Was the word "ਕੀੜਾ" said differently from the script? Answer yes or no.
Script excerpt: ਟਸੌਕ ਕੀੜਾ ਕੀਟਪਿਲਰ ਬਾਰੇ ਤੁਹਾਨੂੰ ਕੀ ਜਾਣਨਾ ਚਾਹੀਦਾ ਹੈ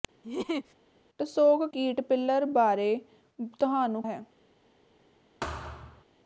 yes